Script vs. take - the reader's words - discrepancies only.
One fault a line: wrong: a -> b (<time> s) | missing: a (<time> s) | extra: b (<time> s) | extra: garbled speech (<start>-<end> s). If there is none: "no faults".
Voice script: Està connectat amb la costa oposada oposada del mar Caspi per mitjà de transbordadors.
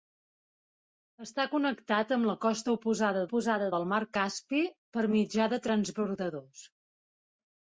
no faults